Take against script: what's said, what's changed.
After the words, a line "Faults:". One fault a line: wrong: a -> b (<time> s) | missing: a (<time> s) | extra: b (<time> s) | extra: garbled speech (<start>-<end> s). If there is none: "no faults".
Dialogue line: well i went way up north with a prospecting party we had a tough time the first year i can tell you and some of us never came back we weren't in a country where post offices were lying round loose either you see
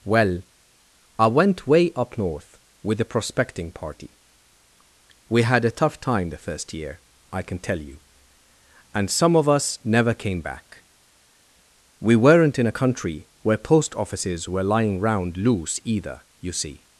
well i went way up north with a prospecting party we had a tough time the first year i can tell you and some of us never came back we weren't in a country where post offices were lying round loose either you see
Faults:
no faults